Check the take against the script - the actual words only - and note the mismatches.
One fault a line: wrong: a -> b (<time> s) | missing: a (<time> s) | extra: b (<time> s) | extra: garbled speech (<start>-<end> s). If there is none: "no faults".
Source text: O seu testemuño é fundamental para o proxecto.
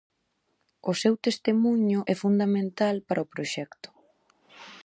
no faults